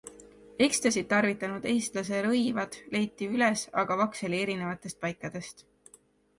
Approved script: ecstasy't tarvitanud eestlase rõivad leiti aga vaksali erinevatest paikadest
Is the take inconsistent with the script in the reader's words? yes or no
yes